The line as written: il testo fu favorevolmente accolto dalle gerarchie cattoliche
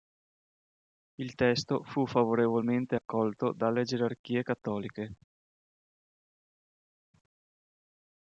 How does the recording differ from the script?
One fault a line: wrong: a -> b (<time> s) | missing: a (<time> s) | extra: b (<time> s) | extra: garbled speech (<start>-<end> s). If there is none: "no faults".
no faults